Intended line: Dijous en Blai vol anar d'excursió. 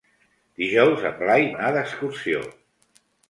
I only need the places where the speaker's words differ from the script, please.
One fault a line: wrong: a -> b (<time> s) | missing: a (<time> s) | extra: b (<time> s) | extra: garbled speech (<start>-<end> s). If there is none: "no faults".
missing: vol (1.4 s)